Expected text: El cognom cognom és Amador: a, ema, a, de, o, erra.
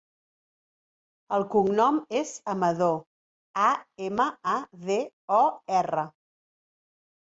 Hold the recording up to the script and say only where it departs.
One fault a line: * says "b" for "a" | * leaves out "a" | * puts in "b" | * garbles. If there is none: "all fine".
* leaves out "cognom"